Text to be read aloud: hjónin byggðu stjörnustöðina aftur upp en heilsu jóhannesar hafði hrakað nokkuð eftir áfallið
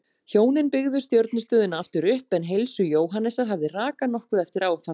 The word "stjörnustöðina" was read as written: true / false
true